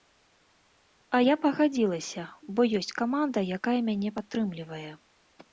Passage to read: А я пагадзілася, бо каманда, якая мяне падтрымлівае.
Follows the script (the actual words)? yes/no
no